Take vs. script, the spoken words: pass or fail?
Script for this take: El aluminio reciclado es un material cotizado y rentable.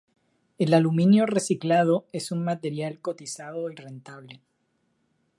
pass